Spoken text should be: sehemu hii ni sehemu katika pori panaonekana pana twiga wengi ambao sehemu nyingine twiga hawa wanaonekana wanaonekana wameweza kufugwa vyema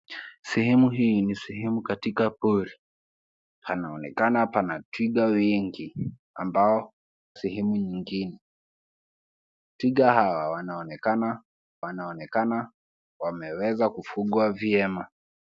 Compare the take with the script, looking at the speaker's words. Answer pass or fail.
pass